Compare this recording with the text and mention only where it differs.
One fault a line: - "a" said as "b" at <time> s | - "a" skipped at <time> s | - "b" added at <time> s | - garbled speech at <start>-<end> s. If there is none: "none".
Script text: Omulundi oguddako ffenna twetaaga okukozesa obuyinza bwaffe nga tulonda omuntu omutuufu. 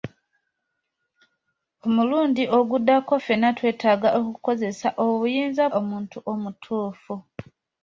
- "bwaffe nga tulonda" skipped at 5.6 s